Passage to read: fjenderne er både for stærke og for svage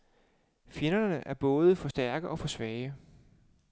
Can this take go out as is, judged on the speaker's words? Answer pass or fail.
pass